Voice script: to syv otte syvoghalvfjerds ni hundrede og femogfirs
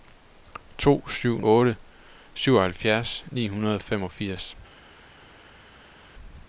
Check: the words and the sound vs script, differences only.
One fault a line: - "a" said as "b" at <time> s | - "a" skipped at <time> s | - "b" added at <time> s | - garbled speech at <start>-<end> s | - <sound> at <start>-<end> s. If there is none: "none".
none